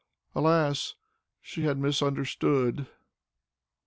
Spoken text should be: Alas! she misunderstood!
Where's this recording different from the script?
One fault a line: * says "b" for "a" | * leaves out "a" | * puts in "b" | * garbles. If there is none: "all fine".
* puts in "had"